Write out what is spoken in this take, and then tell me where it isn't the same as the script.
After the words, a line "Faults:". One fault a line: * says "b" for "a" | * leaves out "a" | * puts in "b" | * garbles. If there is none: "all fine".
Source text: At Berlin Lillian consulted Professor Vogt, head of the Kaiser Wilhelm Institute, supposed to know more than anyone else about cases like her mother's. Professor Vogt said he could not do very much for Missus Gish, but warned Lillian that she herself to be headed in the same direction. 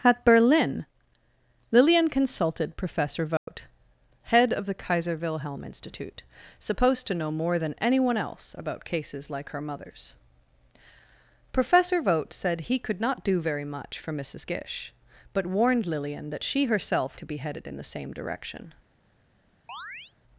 At Berlin Lillian consulted Professor Vogt, head of the Kaiser Wilhelm Institute, supposed to know more than anyone else about cases like her mother's. Professor Vogt said he could not do very much for Missus Gish, but warned Lillian that she herself to be headed in the same direction.
Faults:
all fine